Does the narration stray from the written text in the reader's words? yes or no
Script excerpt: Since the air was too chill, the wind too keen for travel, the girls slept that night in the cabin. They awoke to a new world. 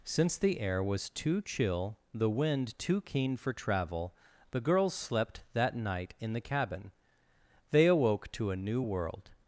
no